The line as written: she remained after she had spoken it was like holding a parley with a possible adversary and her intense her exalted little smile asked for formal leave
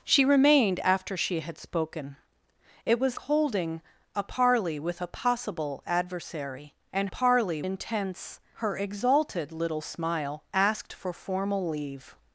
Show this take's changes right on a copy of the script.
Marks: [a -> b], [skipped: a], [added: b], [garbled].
she remained after she had spoken it was [skipped: like] holding a parley with a possible adversary and [her -> parley] intense her exalted little smile asked for formal leave